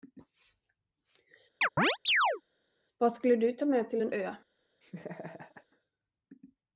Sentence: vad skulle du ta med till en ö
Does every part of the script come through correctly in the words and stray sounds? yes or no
no